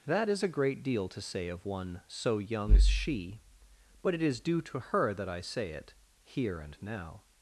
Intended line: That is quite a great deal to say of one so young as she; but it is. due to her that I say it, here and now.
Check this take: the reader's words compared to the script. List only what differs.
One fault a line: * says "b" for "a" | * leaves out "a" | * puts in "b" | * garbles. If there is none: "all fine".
* leaves out "quite"